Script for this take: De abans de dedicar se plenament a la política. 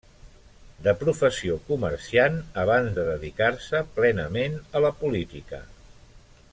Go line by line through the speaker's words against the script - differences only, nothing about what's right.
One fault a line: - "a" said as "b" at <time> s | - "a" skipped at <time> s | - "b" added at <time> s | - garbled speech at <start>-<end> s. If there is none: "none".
- "professió comerciant" added at 1.0 s